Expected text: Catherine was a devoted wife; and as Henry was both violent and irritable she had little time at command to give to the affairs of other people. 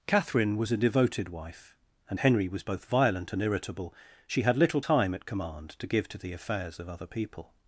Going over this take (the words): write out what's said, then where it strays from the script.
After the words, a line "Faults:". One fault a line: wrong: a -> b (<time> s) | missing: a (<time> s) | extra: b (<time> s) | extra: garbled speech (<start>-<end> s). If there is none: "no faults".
Catherine was a devoted wife; and Henry was both violent and irritable she had little time at command to give to the affairs of other people.
Faults:
missing: as (2.2 s)